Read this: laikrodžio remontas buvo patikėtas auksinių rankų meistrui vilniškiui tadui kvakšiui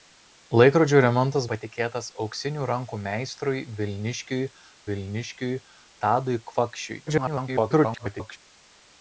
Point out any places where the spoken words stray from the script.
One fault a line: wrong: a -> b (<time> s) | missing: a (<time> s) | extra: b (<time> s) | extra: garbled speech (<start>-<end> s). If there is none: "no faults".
missing: buvo (1.5 s)
extra: vilniškiui (4.9 s)
extra: garbled speech (7.1-8.4 s)